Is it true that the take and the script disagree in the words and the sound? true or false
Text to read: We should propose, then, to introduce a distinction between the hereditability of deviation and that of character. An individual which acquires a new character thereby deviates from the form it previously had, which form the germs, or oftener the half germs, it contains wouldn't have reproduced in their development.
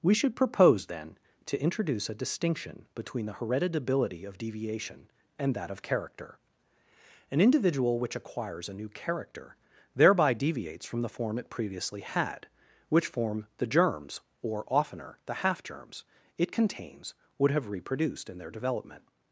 true